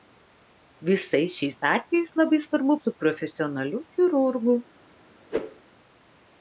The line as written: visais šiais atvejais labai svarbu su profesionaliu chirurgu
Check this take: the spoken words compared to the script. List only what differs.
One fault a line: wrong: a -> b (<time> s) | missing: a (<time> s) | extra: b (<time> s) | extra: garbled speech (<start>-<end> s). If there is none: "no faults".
no faults